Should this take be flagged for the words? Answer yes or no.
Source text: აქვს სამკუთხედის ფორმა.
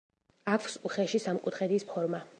yes